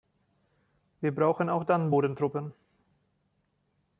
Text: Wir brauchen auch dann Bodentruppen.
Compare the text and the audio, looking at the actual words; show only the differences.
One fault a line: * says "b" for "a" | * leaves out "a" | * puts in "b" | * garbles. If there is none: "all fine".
all fine